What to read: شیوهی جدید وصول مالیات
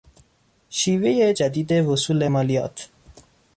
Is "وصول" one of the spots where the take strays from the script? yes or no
no